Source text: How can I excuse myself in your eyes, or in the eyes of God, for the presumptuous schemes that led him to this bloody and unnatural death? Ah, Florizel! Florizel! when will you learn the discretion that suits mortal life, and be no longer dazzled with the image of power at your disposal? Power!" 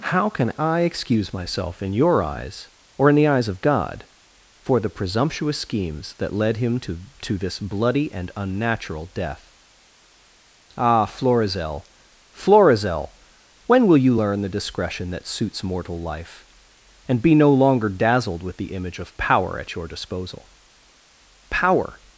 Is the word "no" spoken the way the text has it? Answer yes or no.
yes